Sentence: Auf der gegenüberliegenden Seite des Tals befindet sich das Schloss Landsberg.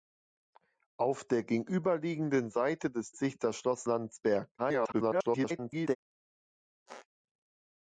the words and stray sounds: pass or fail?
fail